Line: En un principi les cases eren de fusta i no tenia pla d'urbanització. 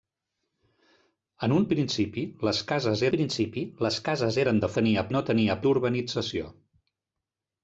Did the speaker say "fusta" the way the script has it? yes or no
no